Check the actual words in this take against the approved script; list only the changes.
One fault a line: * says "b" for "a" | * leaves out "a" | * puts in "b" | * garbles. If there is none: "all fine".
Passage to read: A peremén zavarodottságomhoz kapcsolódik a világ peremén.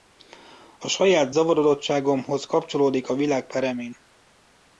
* says "saját" for "peremén"